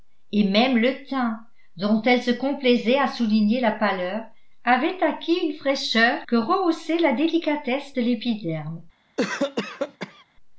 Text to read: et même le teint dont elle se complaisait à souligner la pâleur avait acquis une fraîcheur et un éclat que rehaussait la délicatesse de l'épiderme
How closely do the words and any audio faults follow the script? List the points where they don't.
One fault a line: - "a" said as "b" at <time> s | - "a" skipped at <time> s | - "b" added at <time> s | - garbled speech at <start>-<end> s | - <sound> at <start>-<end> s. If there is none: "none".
- "et un éclat" skipped at 6.2 s
- cough at 9.2-10.2 s